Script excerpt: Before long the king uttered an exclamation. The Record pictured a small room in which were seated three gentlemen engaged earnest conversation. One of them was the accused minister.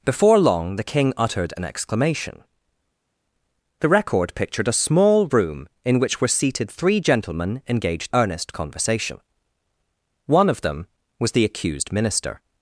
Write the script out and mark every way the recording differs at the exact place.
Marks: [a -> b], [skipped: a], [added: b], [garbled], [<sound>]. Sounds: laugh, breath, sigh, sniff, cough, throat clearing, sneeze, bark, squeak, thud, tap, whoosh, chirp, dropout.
Before long the king uttered an exclamation. The Record pictured a small room in which were seated three gentlemen engaged earnest conversation. One of them was the accused minister.